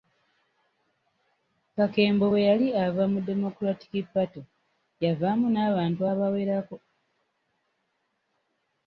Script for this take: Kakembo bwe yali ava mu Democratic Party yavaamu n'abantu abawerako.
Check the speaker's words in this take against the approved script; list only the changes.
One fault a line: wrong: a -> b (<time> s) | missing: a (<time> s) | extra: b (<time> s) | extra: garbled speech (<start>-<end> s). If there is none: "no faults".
no faults